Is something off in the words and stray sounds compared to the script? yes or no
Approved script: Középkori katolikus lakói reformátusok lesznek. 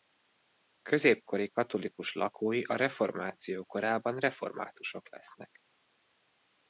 yes